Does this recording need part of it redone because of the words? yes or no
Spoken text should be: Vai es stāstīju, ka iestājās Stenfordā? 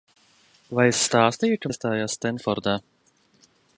no